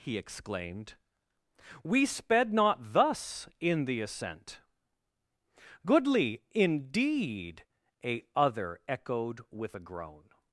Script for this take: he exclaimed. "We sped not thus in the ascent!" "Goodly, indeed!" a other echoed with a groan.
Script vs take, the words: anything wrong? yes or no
no